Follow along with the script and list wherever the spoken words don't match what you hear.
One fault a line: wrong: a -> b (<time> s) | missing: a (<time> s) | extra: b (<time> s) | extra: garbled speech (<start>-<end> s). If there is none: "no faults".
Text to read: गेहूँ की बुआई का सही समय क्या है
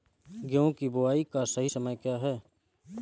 no faults